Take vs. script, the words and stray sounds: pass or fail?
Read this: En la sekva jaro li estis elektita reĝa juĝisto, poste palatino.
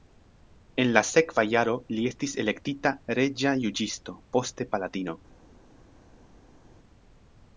pass